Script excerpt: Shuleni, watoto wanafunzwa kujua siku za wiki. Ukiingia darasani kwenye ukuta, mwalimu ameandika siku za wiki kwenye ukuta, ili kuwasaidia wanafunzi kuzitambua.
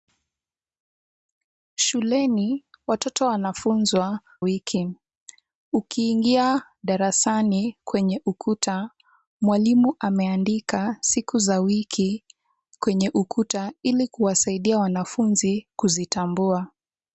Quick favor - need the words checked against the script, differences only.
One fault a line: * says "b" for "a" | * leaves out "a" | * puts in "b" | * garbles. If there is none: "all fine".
* leaves out "kujua siku za"